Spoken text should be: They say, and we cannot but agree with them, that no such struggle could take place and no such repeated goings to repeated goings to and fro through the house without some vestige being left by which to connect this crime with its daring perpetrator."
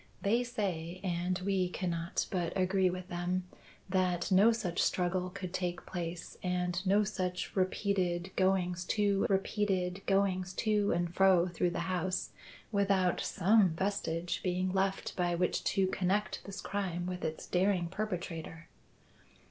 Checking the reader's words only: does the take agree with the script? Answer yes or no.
yes